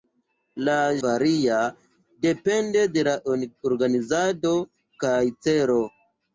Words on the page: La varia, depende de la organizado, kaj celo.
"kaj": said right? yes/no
yes